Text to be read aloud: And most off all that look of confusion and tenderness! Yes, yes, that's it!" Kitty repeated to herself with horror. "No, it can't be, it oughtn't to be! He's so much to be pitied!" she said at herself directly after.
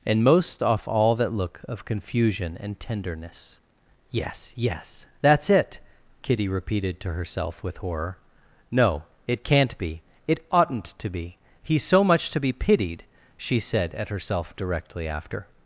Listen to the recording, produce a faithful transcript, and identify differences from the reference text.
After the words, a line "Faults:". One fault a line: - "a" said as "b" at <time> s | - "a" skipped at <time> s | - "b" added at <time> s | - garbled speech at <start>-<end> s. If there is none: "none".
And most off all that look of confusion and tenderness! Yes, yes, that's it!" Kitty repeated to herself with horror. "No, it can't be, it oughtn't to be! He's so much to be pitied!" she said at herself directly after.
Faults:
none